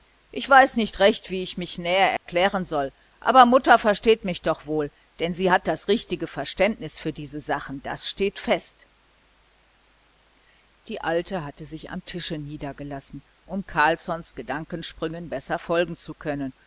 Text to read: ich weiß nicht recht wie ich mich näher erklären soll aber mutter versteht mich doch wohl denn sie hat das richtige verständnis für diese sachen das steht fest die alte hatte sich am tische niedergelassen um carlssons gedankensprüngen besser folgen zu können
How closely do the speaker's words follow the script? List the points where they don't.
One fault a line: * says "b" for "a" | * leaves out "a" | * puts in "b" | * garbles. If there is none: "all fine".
all fine